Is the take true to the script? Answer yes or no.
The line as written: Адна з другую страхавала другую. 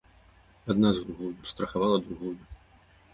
yes